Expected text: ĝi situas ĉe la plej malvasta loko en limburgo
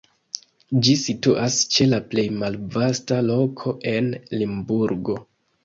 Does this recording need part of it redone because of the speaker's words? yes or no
no